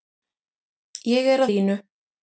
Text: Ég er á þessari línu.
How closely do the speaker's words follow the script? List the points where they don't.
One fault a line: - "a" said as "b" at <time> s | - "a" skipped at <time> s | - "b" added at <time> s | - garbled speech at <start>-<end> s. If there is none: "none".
- "þessari" skipped at 1.5 s